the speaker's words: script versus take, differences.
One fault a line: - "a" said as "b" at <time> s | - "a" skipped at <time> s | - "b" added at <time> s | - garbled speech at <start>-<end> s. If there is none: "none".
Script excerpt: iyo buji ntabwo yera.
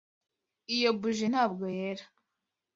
none